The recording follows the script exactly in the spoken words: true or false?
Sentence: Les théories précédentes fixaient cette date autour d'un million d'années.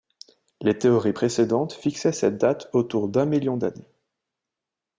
true